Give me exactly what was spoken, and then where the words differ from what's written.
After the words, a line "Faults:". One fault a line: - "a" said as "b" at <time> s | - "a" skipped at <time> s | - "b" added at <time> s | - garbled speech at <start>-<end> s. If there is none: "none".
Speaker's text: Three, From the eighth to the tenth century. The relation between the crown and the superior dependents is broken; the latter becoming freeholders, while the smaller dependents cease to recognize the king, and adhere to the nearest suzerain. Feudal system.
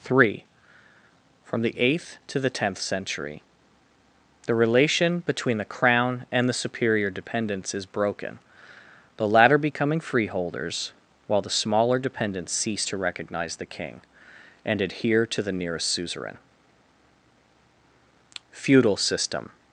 Three, From the eighth to the tenth century. The relation between the crown and the superior dependents is broken; the latter becoming freeholders, while the smaller dependents cease to recognize the king, and adhere to the nearest suzerain. Feudal system.
Faults:
none